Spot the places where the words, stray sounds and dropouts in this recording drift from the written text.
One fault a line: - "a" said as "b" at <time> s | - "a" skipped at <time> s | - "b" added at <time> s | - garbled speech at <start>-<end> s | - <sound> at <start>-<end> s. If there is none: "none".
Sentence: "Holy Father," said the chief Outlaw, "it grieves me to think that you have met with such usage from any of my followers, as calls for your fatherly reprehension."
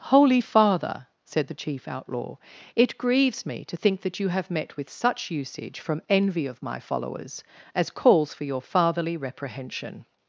- "any" said as "envy" at 6.1 s